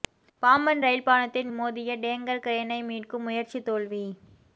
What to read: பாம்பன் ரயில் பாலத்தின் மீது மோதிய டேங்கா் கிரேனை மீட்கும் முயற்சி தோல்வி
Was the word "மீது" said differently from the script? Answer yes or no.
yes